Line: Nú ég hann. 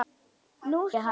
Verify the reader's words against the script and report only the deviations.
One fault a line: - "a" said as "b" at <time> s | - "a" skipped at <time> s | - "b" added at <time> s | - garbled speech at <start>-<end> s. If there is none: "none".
none